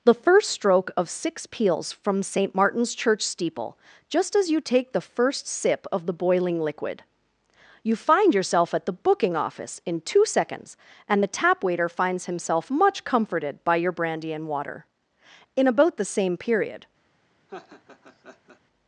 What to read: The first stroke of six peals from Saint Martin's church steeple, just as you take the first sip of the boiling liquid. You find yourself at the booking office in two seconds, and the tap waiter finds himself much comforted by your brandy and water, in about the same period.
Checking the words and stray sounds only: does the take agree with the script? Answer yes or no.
no